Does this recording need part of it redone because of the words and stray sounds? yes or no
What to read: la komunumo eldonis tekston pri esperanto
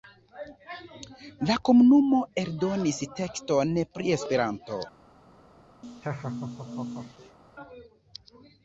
yes